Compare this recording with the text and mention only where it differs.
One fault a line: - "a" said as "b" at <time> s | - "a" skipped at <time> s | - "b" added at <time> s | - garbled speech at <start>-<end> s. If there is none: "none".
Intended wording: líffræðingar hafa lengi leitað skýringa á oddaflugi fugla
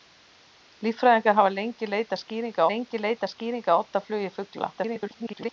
- "lengi leitað skýringa" added at 2.7 s
- garbled speech at 4.7-5.5 s